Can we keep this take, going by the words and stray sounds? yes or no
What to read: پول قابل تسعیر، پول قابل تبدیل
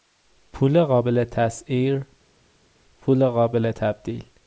yes